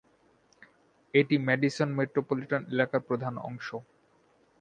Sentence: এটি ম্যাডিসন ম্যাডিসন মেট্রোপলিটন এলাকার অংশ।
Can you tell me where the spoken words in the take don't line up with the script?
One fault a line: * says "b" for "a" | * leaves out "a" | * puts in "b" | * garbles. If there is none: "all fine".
* leaves out "ম্যাডিসন"
* puts in "প্রধান"